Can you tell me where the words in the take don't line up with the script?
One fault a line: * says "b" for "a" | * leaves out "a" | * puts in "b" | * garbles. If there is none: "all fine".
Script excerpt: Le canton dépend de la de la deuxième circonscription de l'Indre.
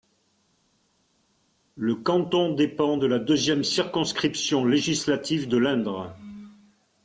* leaves out "de la"
* puts in "législative"